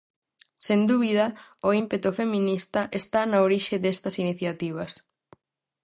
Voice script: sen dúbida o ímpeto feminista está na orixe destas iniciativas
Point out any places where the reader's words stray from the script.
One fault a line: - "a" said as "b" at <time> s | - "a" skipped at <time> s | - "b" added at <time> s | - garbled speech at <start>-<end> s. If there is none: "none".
none